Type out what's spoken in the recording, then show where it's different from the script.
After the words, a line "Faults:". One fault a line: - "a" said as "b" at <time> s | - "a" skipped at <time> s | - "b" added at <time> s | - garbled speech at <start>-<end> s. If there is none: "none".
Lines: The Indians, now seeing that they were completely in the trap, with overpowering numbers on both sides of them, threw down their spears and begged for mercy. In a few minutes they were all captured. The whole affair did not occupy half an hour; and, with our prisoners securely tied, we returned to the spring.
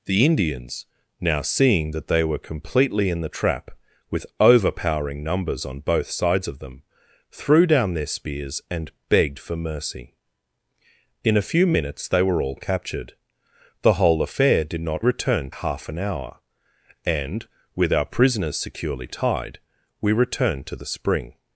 The Indians, now seeing that they were completely in the trap, with overpowering numbers on both sides of them, threw down their spears and begged for mercy. In a few minutes they were all captured. The whole affair did not returned half an hour; and, with our prisoners securely tied, we returned to the spring.
Faults:
- "occupy" said as "returned" at 15.0 s